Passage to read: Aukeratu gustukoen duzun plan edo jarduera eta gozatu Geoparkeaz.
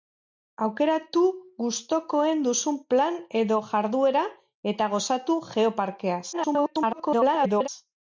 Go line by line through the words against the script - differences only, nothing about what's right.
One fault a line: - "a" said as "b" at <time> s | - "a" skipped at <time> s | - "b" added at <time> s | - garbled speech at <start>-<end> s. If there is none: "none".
- garbled speech at 6.3-7.7 s